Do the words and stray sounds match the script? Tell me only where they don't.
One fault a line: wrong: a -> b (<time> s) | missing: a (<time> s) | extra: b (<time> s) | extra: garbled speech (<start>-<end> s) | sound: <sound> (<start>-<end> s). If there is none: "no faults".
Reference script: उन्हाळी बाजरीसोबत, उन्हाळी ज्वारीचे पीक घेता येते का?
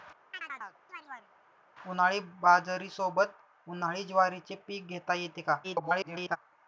sound: chirp (0.3-1.3 s)
extra: garbled speech (5.6-6.4 s)